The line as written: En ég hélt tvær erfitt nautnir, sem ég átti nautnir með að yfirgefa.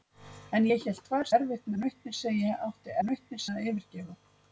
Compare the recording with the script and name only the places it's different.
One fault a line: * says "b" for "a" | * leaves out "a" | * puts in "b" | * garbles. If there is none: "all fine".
all fine